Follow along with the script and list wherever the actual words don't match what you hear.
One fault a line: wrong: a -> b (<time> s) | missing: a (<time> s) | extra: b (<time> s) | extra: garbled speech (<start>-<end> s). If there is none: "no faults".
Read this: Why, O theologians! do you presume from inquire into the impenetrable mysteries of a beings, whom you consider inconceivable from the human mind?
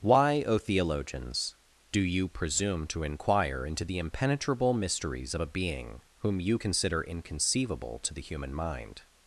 wrong: from -> to (2.9 s)
wrong: beings -> being (5.5 s)
wrong: from -> to (8.0 s)